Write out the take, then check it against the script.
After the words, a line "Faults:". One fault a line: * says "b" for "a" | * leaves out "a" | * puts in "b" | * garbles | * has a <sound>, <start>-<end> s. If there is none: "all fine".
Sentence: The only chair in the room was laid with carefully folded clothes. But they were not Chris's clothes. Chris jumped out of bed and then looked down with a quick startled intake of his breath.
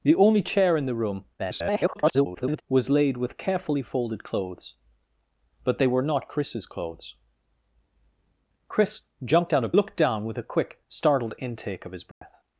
The only chair in the room [garbled] was laid with carefully folded clothes. But they were not Chris's clothes. Chris jumped out of looked down with a quick startled intake of his breath.
Faults:
* garbles
* leaves out "bed and then"
* has a dropout, 12.1-12.2 s